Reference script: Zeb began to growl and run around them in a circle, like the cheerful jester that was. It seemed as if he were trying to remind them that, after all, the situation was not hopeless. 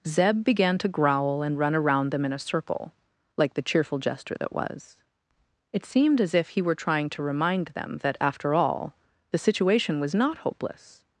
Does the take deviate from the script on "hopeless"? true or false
false